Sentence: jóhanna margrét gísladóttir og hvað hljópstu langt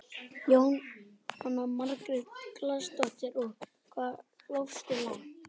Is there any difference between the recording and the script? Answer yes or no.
no